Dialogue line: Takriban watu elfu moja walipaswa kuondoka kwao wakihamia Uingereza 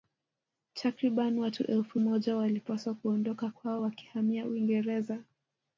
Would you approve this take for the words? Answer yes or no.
yes